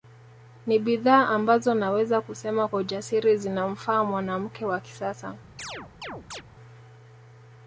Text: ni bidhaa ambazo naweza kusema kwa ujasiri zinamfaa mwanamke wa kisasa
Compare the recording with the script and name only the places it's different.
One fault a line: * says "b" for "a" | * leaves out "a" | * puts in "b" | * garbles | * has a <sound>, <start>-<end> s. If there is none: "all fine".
* has a chirp, 5.6-6.4 s